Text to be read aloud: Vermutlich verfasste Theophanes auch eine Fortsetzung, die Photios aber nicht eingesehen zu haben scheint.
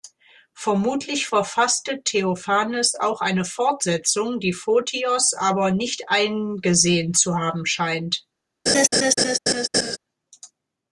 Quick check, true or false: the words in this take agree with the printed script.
true